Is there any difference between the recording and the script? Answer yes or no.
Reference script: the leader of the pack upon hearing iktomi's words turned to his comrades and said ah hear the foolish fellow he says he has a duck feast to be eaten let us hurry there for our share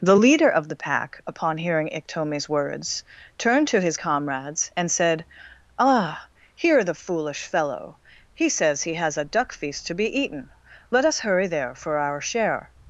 no